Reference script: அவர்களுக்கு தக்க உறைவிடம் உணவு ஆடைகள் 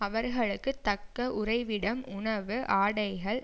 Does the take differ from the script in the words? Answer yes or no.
no